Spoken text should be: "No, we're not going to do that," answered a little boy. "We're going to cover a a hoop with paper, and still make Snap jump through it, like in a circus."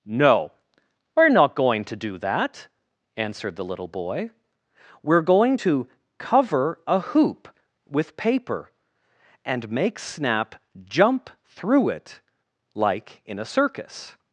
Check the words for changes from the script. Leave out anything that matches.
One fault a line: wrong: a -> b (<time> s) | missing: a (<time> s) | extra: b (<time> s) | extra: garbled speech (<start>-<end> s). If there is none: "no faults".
wrong: a -> the (3.5 s)
missing: a (7.0 s)
missing: still (9.7 s)